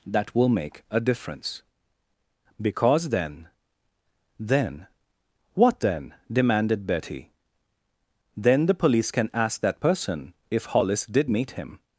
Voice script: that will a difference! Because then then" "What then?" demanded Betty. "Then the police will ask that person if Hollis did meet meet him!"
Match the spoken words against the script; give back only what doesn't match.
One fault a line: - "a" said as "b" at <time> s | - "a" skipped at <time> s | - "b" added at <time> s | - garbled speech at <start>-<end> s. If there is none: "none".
- "make" added at 0.5 s
- "will" said as "can" at 9.1 s
- "meet" skipped at 11.5 s